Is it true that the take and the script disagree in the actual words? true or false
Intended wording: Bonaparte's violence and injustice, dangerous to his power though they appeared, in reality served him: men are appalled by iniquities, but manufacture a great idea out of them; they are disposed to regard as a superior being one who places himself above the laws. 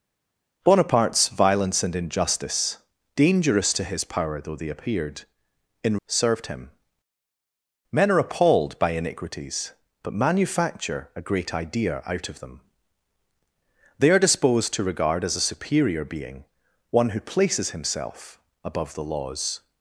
true